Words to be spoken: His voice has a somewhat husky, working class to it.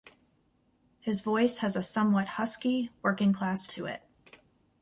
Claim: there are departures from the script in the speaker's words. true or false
false